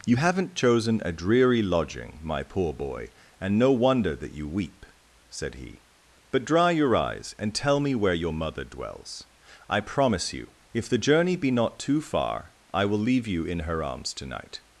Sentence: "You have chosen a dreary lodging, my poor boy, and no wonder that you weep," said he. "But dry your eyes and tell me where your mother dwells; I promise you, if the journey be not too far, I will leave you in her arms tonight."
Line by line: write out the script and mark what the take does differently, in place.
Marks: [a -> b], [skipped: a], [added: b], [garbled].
"You [have -> haven't] chosen a dreary lodging, my poor boy, and no wonder that you weep," said he. "But dry your eyes and tell me where your mother dwells; I promise you, if the journey be not too far, I will leave you in her arms tonight."